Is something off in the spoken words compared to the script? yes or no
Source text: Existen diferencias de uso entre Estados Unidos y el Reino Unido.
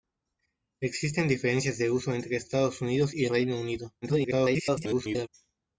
yes